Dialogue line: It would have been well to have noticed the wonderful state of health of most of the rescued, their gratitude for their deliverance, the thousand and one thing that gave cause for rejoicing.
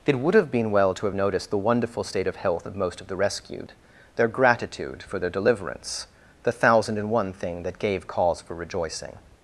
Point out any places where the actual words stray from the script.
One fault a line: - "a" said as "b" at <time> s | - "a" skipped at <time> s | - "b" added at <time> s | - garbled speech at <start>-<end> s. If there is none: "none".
none